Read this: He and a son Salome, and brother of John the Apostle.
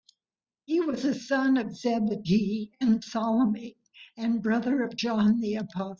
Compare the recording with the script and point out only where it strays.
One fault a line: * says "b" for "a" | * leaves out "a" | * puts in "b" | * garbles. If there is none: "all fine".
* says "was" for "and"
* puts in "of Zebedee and"